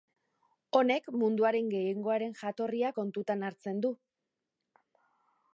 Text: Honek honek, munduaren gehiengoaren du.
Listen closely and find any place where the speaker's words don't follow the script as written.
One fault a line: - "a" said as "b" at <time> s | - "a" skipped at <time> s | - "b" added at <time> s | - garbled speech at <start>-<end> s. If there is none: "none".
- "honek" skipped at 1.1 s
- "jatorria kontutan hartzen" added at 2.4 s